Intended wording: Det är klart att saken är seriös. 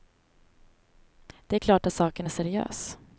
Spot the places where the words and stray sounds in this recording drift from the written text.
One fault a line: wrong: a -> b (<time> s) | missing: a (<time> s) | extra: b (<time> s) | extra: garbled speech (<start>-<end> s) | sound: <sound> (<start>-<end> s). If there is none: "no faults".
no faults